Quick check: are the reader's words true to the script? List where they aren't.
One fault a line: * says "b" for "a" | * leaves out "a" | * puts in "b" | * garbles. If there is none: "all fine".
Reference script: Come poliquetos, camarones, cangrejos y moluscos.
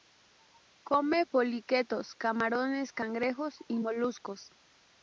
all fine